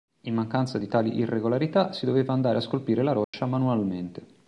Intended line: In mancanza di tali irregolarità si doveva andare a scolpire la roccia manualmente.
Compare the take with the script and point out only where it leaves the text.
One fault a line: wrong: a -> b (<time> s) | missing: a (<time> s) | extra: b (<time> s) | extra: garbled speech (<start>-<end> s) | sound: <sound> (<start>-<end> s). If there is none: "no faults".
sound: dropout (3.2-3.3 s)